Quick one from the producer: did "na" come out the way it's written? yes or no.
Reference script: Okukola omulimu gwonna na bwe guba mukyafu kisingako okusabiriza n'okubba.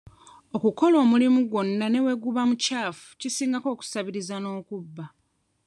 no